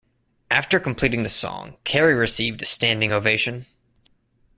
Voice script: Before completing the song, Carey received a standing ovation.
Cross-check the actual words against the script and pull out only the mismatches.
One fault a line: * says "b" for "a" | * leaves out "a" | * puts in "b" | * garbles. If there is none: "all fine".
* says "After" for "Before"